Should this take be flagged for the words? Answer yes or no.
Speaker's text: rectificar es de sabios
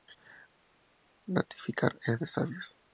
no